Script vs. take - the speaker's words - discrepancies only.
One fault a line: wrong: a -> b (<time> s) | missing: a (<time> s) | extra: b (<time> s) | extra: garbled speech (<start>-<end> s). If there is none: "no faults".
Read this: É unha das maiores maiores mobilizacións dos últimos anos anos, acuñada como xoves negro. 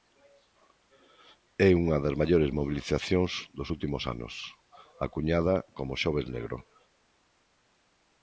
missing: maiores (2.5 s)
missing: anos (4.3 s)